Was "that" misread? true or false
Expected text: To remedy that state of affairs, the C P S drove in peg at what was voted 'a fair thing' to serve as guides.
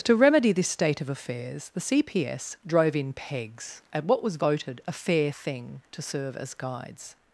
true